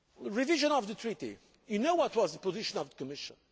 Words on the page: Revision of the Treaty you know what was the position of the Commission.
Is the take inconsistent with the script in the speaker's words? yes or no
no